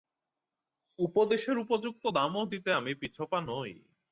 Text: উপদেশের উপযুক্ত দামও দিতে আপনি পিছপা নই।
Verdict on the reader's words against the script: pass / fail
fail